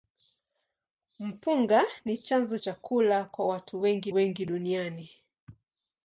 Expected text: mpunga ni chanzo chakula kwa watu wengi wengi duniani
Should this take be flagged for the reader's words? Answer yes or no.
no